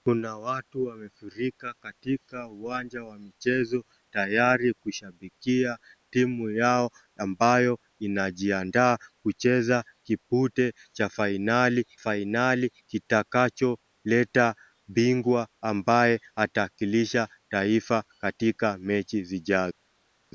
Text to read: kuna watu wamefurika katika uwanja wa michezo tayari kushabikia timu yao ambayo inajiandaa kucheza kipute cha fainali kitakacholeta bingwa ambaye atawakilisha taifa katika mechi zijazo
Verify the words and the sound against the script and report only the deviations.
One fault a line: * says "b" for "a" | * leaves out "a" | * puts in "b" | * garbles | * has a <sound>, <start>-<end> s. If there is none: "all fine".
* puts in "fainali"